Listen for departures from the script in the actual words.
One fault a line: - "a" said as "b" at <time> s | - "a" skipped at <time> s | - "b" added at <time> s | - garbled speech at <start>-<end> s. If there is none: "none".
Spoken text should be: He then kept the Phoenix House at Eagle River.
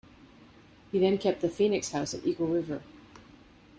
none